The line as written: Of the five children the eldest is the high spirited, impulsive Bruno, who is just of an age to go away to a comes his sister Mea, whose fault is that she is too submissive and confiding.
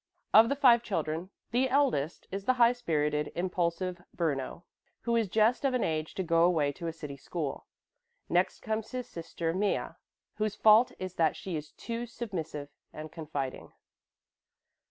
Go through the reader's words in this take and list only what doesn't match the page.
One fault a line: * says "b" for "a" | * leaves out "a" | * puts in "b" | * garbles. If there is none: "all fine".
* puts in "city school Next"